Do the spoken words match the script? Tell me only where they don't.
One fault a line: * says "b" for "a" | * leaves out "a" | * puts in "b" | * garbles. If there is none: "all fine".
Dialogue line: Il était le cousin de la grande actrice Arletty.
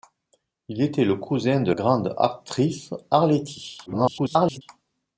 * leaves out "la"
* garbles